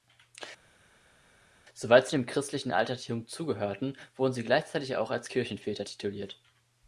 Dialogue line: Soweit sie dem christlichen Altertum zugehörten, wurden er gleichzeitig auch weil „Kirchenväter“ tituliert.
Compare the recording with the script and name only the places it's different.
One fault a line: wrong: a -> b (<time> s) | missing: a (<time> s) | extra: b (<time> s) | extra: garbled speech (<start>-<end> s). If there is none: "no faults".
wrong: er -> sie (4.3 s)
wrong: weil -> als (5.1 s)